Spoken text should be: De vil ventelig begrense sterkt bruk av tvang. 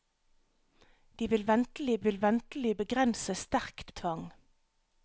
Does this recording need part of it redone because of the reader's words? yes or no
yes